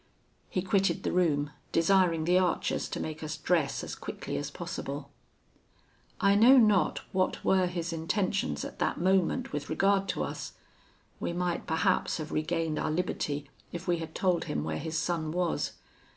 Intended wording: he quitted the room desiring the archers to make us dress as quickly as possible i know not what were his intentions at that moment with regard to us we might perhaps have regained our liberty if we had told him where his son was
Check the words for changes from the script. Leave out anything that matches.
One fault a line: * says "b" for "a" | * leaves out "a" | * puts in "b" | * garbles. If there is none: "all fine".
all fine